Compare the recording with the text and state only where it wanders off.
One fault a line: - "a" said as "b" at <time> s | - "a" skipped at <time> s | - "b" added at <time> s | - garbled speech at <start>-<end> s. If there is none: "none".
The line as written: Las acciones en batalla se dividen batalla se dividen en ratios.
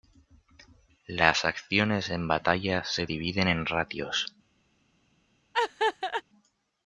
- "batalla se dividen" skipped at 3.5 s